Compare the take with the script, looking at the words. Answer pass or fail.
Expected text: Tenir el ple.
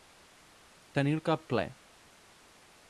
fail